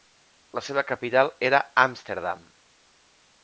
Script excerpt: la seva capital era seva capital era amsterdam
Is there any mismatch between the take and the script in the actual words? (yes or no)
yes